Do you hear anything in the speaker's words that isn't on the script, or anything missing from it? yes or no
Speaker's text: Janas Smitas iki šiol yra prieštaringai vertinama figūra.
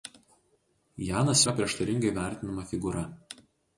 yes